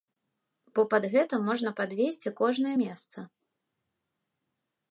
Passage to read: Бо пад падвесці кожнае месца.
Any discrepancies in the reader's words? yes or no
yes